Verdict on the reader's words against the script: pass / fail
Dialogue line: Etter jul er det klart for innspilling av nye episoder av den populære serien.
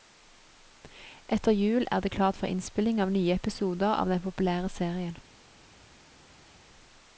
pass